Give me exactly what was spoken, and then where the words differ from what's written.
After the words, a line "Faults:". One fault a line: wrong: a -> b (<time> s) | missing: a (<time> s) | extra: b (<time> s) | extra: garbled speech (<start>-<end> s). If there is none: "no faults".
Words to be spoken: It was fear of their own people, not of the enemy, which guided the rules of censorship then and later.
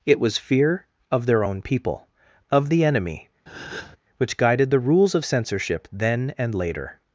It was fear of their own people, of the enemy, which guided the rules of censorship then and later.
Faults:
missing: not (2.1 s)